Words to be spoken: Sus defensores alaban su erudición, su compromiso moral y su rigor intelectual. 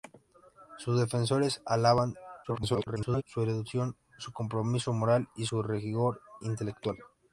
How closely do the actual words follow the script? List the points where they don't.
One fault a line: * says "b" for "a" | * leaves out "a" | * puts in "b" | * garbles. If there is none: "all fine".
* garbles